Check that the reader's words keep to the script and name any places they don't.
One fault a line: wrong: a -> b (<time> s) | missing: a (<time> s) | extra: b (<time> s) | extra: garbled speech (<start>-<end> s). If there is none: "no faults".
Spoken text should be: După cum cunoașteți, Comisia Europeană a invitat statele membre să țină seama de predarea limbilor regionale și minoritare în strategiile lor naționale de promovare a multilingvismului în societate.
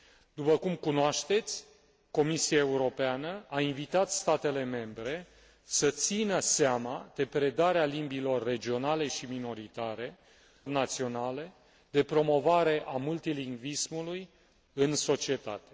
missing: în strategiile lor (10.2 s)